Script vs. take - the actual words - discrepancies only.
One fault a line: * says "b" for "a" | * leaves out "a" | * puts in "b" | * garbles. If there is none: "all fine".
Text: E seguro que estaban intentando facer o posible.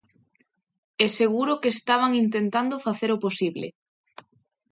all fine